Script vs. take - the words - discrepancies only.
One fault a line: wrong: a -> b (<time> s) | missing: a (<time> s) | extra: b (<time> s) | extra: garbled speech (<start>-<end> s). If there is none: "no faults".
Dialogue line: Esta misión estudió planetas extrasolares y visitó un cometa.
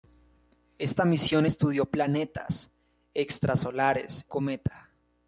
missing: y visitó un (4.3 s)